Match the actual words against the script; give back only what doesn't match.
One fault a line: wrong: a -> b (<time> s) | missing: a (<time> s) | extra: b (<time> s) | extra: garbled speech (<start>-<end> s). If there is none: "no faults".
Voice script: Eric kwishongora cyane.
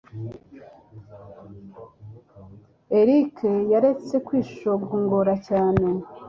extra: yaretse (3.7 s)